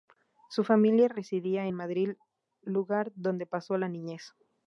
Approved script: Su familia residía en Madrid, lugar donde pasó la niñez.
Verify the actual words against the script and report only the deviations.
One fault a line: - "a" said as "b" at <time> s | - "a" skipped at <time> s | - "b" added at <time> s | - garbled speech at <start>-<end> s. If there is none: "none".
none